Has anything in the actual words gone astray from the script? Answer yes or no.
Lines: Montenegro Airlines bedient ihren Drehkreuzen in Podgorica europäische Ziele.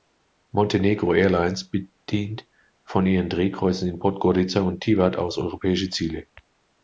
yes